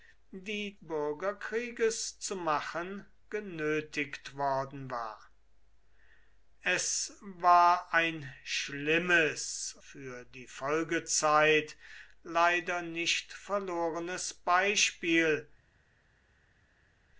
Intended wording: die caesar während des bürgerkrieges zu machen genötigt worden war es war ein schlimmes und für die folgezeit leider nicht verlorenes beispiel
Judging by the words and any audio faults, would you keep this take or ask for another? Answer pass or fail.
fail